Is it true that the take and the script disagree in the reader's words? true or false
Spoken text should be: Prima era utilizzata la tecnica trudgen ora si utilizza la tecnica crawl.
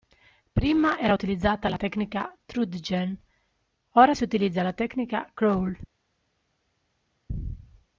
false